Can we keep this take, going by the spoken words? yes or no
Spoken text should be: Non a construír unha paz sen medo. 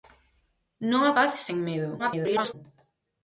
no